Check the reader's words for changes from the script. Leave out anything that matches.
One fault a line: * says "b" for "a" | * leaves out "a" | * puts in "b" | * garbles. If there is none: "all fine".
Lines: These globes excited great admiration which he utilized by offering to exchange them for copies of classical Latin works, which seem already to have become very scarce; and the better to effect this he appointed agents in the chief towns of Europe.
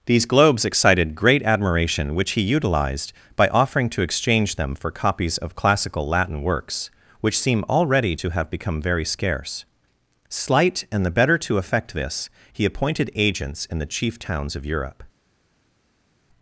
* puts in "slight"